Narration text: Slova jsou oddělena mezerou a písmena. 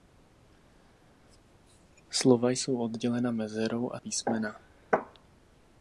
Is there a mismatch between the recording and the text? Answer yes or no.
no